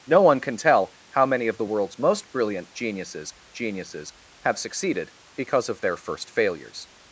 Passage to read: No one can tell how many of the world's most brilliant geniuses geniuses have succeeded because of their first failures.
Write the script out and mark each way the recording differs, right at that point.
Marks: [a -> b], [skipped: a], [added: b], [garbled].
No one can tell how many of the world's most brilliant geniuses geniuses have succeeded because of their first failures.